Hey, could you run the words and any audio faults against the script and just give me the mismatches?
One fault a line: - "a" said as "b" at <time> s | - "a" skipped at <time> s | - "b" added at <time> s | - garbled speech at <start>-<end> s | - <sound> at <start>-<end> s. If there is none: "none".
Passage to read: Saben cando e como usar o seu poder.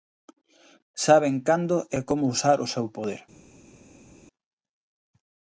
none